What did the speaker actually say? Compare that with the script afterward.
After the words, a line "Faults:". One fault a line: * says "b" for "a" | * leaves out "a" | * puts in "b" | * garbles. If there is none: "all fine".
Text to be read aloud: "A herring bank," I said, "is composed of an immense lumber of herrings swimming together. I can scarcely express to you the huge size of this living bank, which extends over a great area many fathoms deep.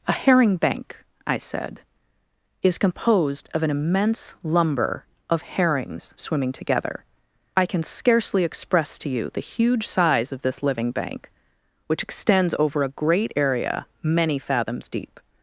"A herring bank," I said, "is composed of an immense lumber of herrings swimming together. I can scarcely express to you the huge size of this living bank, which extends over a great area many fathoms deep.
Faults:
all fine